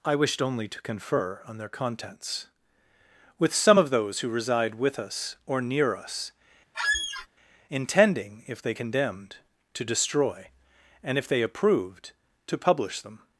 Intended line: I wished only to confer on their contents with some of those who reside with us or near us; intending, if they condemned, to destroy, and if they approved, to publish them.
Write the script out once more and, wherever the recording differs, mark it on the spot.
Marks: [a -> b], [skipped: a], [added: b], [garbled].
I wished only to confer on their contents with some of those who reside with us or near us; intending, if they condemned, to destroy, and if they approved, to publish them.